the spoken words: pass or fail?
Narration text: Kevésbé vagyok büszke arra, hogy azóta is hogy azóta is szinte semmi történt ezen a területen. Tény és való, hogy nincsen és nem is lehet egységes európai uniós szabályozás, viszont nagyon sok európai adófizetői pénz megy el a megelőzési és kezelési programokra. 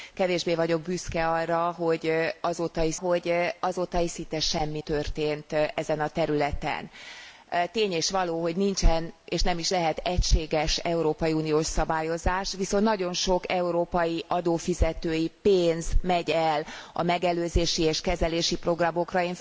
pass